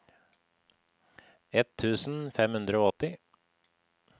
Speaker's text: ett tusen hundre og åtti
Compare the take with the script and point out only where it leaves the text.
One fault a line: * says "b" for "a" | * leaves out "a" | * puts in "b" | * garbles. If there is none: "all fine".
* puts in "fem"